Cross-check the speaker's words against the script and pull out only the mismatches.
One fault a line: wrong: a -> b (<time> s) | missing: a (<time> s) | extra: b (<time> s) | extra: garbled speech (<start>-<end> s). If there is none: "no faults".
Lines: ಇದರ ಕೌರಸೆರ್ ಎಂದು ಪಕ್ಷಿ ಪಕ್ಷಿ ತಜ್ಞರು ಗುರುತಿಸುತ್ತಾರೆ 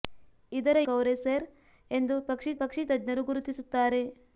no faults